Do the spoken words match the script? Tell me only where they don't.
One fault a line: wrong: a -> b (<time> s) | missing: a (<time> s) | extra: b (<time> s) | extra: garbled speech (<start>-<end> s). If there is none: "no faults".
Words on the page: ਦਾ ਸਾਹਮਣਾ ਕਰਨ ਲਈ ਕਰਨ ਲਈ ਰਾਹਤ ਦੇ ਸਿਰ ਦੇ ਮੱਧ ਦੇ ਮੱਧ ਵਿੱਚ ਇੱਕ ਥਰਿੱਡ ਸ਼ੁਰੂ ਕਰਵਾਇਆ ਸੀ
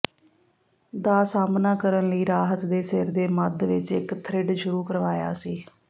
missing: ਕਰਨ ਲਈ (2.2 s)
missing: ਦੇ ਮੱਧ (3.6 s)